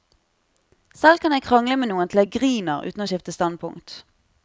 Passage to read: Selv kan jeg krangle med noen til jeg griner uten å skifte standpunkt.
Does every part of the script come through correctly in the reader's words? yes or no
yes